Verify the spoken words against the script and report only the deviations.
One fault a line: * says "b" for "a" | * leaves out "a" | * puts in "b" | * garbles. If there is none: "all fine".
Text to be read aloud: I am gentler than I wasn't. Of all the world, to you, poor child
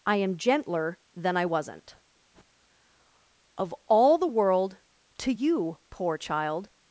all fine